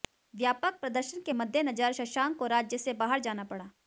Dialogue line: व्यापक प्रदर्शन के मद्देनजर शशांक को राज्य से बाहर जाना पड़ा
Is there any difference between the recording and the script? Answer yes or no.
no